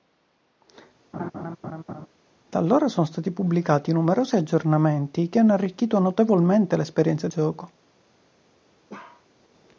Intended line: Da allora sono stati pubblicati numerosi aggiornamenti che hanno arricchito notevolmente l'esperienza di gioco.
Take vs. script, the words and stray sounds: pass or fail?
fail